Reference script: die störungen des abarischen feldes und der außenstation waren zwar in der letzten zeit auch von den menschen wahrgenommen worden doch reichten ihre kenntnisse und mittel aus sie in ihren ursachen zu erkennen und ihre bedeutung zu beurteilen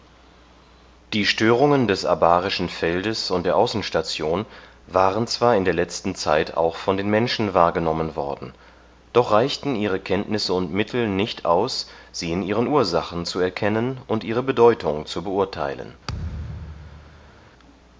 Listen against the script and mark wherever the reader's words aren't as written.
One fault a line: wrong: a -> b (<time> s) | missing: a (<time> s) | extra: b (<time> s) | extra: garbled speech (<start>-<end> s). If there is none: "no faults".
extra: nicht (11.1 s)